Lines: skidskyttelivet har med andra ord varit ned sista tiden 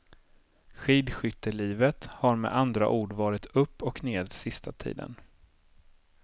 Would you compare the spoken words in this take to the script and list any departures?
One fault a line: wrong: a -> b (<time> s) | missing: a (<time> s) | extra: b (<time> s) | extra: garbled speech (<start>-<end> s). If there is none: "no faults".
extra: upp och (3.5 s)